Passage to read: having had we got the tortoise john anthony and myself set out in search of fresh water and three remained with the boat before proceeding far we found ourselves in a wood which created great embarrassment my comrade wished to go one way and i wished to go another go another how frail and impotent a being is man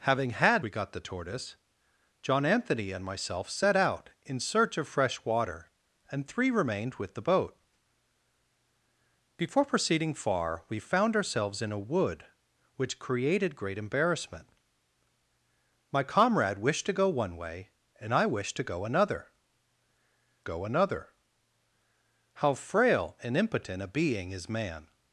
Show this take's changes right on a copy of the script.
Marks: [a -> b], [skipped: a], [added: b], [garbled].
having had we got the tortoise john anthony and myself set out in search of fresh water and three remained with the boat before proceeding far we found ourselves in a wood which created great embarrassment my comrade wished to go one way and i wished to go another go another how frail and impotent a being is man